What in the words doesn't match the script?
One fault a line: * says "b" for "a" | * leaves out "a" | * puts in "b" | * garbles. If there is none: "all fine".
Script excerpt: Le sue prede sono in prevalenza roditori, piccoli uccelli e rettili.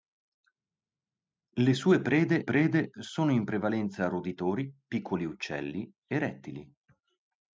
* puts in "prede"